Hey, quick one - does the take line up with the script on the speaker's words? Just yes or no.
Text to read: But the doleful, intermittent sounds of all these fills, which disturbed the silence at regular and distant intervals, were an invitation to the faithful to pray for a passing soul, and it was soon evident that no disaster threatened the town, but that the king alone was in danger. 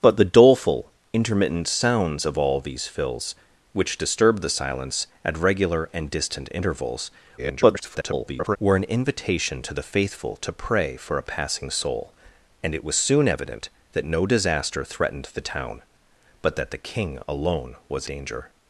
no